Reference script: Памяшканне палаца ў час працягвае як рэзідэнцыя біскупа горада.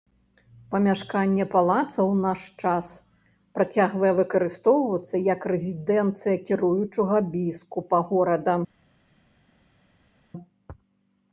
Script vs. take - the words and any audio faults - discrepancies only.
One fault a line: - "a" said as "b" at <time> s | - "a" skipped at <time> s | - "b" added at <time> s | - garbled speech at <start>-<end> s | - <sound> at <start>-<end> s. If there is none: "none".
- "наш" added at 2.2 s
- "выкарыстоўвацца" added at 4.2 s
- "кіруючага" added at 6.5 s